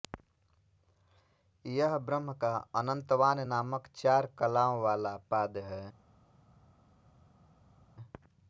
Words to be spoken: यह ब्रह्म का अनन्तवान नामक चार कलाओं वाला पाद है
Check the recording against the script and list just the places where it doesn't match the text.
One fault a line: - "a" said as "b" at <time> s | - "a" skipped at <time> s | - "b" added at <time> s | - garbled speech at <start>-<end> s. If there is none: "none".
none